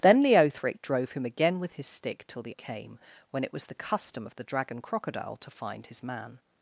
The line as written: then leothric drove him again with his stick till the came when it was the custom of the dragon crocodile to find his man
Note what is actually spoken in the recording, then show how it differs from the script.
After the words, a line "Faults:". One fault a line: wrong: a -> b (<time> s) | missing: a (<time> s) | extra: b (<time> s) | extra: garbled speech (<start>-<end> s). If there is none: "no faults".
then leothric drove him again with his stick till the came when it was the custom of the dragon crocodile to find his man
Faults:
no faults